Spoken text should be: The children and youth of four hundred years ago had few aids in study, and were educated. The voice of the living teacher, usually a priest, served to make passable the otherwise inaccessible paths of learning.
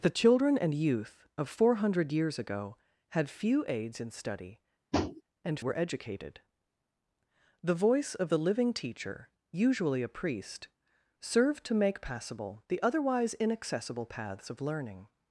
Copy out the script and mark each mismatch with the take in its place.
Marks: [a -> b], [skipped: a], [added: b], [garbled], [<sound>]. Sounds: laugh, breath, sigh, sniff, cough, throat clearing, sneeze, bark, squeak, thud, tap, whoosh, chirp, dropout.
The children and youth of four hundred years ago had few aids in study, [tap] and were educated. The voice of the living teacher, usually a priest, served to make passable the otherwise inaccessible paths of learning.